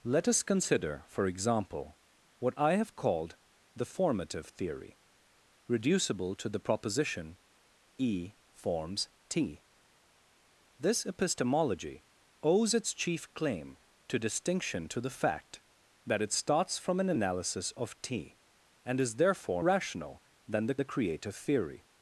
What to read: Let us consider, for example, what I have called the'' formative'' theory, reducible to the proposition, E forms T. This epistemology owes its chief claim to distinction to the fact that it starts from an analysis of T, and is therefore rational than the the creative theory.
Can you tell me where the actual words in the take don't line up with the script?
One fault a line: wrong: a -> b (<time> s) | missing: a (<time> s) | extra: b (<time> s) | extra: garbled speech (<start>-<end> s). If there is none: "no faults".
no faults